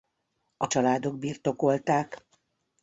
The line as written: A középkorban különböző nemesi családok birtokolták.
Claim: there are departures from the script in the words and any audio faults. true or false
true